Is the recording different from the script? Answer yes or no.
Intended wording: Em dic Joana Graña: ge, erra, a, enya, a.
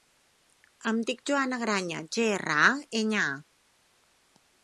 no